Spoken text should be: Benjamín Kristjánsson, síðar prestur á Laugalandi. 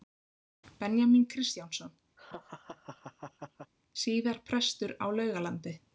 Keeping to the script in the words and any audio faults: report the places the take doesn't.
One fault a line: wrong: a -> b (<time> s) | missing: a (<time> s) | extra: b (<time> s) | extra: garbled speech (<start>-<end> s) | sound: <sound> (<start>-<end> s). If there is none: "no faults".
sound: laugh (2.2-3.7 s)